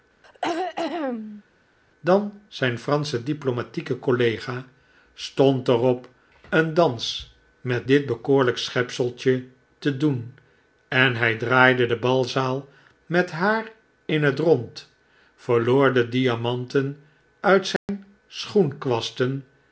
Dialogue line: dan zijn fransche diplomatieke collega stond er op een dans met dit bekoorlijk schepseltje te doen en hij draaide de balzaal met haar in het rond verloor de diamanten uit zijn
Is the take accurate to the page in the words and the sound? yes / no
no